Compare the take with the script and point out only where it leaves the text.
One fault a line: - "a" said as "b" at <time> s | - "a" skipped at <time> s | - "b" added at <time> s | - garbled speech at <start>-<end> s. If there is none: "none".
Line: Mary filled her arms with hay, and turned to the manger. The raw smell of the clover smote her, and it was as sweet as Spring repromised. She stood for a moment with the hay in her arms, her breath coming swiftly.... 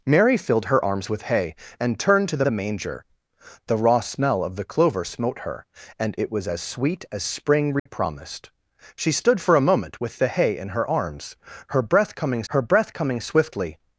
- "the" added at 2.4 s
- "her breath coming" added at 12.5 s